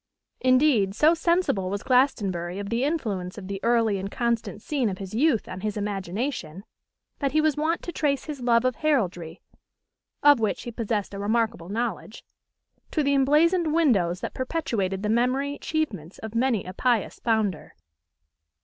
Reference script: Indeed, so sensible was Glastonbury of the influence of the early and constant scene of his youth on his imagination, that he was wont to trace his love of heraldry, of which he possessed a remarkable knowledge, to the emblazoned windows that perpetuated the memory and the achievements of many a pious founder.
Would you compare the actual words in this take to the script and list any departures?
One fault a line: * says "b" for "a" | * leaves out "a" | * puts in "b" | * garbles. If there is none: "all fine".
* leaves out "and the"